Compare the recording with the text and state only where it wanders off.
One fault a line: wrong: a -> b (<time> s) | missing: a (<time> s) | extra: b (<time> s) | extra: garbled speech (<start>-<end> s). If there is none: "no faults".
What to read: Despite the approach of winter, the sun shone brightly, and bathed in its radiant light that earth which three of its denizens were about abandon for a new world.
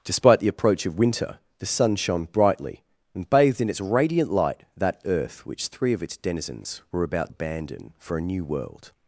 no faults